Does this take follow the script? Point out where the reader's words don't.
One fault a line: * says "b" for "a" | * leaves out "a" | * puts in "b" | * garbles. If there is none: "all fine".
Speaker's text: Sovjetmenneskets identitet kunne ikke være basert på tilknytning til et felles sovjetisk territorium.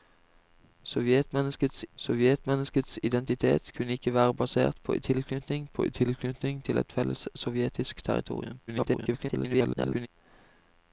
* puts in "sovjetmenneskets"
* puts in "på tilknytning"
* garbles